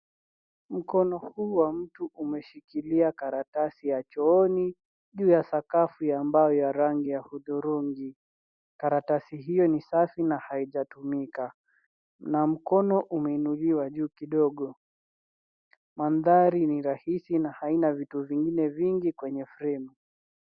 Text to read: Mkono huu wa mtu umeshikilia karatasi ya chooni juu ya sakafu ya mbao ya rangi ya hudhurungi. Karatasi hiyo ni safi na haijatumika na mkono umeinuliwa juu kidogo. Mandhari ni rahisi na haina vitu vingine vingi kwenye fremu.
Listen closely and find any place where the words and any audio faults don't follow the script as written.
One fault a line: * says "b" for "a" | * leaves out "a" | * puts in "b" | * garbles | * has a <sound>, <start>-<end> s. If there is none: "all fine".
all fine